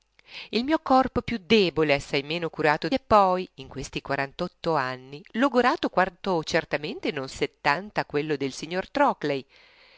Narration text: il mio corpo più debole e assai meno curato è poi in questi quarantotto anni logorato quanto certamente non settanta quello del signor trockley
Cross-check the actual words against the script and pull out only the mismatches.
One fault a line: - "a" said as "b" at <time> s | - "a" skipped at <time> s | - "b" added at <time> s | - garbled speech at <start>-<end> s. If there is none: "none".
none